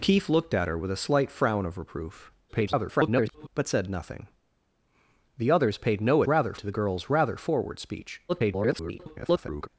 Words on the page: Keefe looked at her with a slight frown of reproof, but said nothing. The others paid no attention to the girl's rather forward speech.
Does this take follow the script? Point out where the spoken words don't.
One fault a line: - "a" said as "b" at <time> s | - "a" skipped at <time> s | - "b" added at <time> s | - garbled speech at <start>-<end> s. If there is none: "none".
- garbled speech at 2.5-3.5 s
- "attention" said as "rather" at 6.3 s
- garbled speech at 8.3-9.7 s